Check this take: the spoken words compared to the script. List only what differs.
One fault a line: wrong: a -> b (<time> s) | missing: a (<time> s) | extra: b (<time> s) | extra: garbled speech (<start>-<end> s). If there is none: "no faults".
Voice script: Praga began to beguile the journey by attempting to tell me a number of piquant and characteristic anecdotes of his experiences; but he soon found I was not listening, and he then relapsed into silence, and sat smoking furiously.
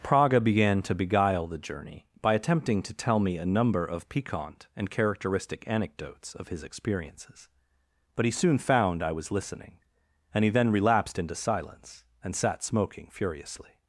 missing: not (9.3 s)